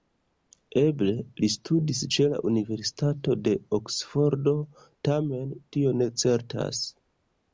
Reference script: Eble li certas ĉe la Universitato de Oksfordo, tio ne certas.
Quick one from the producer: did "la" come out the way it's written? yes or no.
yes